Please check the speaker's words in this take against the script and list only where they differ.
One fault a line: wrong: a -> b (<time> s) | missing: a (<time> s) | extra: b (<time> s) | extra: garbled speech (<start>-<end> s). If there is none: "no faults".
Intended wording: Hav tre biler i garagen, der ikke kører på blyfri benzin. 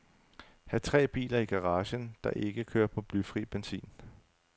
no faults